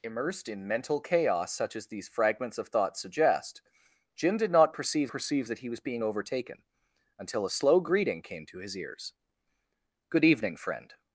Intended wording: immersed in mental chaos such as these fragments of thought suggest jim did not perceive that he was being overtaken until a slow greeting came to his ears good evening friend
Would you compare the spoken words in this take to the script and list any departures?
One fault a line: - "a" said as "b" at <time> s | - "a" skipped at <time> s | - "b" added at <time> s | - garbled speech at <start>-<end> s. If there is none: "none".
- "perceive" added at 5.1 s